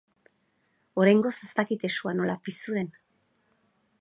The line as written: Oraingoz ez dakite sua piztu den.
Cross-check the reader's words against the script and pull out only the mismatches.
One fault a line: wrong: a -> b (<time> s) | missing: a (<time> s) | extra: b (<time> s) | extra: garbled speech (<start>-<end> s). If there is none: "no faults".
extra: nola (2.2 s)